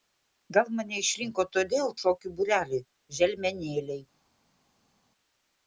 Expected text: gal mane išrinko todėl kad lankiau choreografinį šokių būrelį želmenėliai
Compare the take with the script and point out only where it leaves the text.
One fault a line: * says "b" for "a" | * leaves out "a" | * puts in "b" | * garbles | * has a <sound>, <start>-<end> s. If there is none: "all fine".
* leaves out "kad lankiau choreografinį"